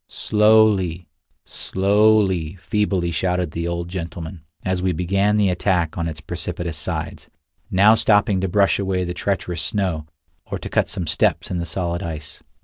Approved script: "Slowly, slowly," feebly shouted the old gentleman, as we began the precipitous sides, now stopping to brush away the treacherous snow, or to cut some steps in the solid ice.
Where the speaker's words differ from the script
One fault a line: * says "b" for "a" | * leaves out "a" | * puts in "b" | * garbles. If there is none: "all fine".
* puts in "attack on its"